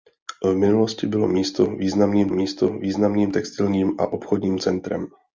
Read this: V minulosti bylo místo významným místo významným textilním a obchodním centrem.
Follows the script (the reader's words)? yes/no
yes